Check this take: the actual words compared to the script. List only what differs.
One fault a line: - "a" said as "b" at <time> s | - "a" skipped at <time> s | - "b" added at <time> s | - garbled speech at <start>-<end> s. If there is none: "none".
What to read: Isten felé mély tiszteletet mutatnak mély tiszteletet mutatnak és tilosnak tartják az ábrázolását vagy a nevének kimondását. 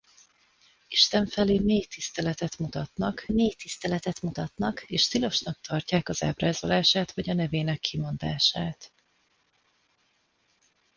none